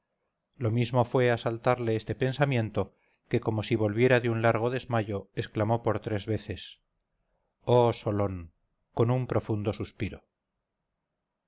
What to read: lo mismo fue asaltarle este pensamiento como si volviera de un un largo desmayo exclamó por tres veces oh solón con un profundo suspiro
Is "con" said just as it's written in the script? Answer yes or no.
yes